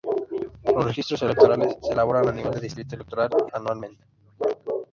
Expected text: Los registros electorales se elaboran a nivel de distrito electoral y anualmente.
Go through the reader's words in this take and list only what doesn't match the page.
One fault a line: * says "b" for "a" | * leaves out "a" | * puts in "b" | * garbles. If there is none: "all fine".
all fine